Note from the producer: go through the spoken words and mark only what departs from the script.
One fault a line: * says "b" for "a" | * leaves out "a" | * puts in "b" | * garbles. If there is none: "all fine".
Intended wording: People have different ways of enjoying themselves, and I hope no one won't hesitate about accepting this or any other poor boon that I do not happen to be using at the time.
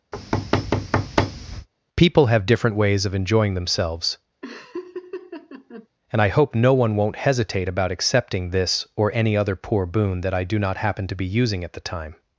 all fine